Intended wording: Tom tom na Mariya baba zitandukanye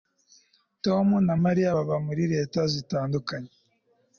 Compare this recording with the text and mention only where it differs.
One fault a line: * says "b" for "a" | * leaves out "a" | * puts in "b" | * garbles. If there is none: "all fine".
* leaves out "tom"
* puts in "muri leta"